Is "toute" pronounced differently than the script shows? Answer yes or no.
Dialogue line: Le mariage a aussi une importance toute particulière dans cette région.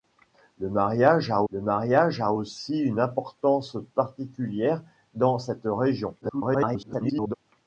yes